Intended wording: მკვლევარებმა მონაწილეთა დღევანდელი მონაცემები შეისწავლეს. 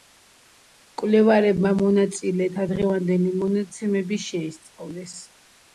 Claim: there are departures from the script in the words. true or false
false